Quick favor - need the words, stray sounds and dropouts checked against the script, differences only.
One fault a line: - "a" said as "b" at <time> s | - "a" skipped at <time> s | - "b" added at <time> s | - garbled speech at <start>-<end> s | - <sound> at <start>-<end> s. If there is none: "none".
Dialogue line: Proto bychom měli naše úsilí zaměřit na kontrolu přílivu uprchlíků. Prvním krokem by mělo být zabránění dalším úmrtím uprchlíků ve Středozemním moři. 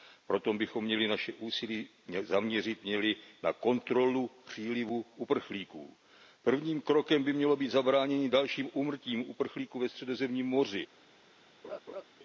- laugh at 11.6-12.0 s